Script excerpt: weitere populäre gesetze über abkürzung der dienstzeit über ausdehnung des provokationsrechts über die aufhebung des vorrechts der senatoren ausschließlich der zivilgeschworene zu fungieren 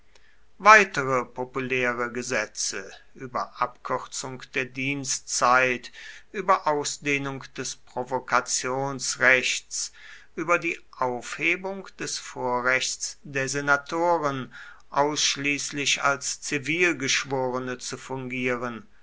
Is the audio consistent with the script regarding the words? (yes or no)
no